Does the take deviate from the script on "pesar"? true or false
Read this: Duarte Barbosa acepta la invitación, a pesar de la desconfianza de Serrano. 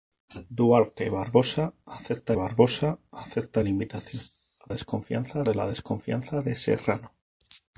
true